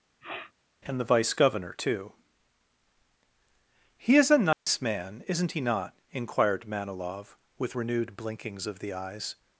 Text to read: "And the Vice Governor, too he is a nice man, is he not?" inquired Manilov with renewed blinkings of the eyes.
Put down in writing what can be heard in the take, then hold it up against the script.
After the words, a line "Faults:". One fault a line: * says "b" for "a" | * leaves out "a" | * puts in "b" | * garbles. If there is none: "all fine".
"And the Vice Governor, too he is a nice man, isn't he not?" inquired Manilov with renewed blinkings of the eyes.
Faults:
* says "isn't" for "is"